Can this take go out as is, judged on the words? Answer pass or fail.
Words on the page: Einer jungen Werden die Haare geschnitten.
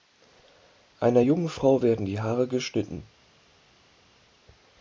fail